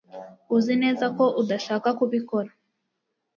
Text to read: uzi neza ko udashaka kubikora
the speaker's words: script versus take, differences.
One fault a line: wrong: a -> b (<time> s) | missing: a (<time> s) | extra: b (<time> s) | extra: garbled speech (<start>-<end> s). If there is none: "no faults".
no faults